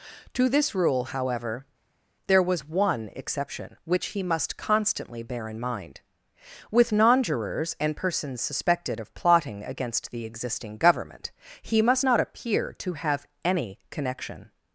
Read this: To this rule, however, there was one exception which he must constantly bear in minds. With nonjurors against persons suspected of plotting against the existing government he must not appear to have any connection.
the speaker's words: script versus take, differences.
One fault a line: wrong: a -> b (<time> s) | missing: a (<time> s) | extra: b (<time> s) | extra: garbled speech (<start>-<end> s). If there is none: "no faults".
wrong: minds -> mind (5.6 s)
wrong: against -> and (7.8 s)